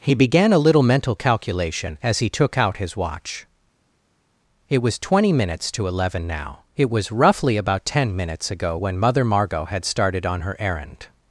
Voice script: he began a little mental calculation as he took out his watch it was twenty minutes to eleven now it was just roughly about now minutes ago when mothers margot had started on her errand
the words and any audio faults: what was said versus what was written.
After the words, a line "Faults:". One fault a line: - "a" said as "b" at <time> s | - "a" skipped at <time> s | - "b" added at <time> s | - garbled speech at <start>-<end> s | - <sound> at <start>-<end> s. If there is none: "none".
he began a little mental calculation as he took out his watch it was twenty minutes to eleven now it was roughly about ten minutes ago when mother margot had started on her errand
Faults:
- "just" skipped at 7.1 s
- "now" said as "ten" at 7.8 s
- "mothers" said as "mother" at 9.0 s